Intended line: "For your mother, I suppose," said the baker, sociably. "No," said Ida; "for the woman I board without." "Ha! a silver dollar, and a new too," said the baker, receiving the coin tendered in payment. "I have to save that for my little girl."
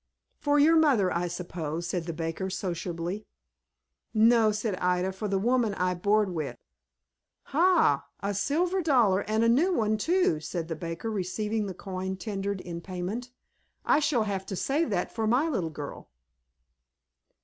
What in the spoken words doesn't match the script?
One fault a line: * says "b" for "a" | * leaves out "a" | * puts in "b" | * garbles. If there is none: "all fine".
* says "with" for "without"
* puts in "one"
* puts in "shall"